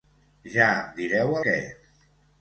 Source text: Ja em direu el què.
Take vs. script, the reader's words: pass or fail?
fail